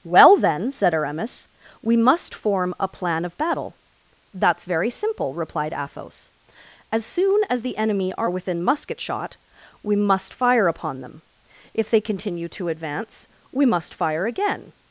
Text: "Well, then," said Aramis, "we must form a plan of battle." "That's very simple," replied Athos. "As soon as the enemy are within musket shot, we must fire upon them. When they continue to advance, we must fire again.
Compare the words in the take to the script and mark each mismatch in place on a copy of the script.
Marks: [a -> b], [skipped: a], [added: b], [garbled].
"Well, then," said Aramis, "we must form a plan of battle." "That's very simple," replied Athos. "As soon as the enemy are within musket shot, we must fire upon them. [When -> If] they continue to advance, we must fire again.